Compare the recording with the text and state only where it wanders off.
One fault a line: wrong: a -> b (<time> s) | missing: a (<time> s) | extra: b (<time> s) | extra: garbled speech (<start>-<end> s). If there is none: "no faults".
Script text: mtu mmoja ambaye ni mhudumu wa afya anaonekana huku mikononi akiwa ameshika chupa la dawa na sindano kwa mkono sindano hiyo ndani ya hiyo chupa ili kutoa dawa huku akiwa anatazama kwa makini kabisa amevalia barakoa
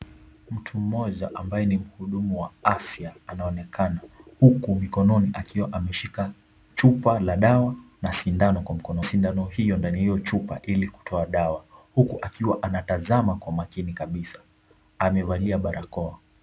no faults